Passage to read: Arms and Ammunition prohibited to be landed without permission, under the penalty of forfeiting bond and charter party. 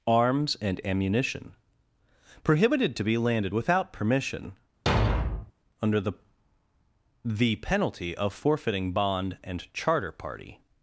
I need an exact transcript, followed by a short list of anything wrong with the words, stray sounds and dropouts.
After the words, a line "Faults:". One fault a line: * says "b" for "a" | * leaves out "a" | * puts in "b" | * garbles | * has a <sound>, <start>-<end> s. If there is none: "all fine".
Arms and Ammunition prohibited to be landed without permission, under the the penalty of forfeiting bond and charter party.
Faults:
* has a thud, 4.9-5.5 s
* puts in "the"